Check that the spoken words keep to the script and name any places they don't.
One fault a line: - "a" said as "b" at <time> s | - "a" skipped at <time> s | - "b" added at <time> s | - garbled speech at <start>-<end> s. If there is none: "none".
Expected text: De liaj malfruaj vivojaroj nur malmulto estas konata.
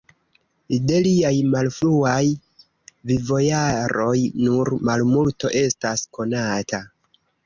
none